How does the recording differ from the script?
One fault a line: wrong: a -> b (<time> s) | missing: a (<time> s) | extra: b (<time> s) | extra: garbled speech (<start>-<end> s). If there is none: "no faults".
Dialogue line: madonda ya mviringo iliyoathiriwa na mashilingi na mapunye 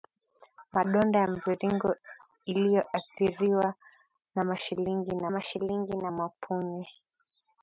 extra: mashilingi na (5.3 s)